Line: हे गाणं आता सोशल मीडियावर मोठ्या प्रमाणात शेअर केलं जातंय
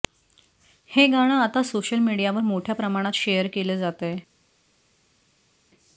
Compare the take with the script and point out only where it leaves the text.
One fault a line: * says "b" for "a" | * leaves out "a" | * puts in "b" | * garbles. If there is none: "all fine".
all fine